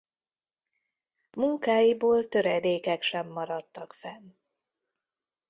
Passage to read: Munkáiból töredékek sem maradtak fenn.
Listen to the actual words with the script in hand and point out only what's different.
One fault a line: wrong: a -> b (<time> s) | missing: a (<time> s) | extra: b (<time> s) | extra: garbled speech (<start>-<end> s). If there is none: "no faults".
no faults